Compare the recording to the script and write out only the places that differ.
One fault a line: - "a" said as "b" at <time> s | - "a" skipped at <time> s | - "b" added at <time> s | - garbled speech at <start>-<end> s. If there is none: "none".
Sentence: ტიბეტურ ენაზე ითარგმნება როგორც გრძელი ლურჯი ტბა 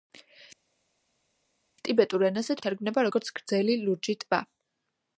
none